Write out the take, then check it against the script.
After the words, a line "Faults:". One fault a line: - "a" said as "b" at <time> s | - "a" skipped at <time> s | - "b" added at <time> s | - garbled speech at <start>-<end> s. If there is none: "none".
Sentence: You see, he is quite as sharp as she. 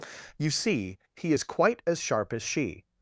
You see, he is quite as sharp as she.
Faults:
none